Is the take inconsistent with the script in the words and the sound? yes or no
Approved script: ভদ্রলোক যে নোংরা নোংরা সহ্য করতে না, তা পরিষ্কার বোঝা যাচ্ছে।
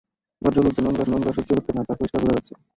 no